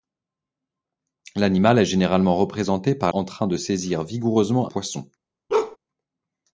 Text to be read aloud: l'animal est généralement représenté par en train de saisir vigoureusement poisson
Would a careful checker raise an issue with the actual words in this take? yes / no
no